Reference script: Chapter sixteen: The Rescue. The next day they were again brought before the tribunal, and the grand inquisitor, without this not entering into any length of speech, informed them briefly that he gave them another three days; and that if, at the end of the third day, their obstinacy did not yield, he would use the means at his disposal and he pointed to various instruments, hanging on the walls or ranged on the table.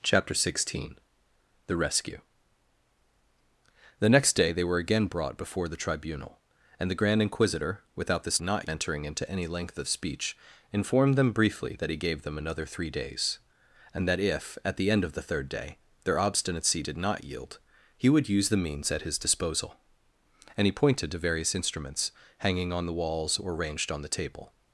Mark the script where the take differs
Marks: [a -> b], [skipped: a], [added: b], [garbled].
Chapter sixteen: The Rescue. The next day they were again brought before the tribunal, and the grand inquisitor, without this not entering into any length of speech, informed them briefly that he gave them another three days; and that if, at the end of the third day, their obstinacy did not yield, he would use the means at his disposal and he pointed to various instruments, hanging on the walls or ranged on the table.